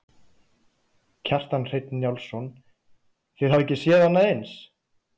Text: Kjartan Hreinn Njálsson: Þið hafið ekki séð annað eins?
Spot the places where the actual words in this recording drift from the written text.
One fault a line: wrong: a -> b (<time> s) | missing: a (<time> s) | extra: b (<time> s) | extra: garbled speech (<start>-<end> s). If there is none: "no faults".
no faults